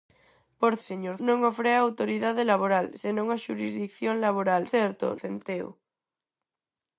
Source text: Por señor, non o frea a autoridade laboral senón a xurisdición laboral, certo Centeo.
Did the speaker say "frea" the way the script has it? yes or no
yes